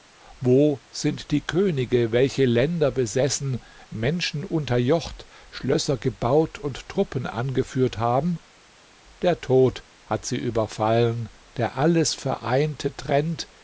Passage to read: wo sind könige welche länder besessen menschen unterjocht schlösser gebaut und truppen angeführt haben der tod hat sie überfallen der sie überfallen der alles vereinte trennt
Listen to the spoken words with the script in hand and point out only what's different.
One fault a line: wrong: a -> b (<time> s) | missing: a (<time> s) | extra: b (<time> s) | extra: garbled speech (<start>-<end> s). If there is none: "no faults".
extra: die (1.3 s)
missing: sie überfallen der (11.8 s)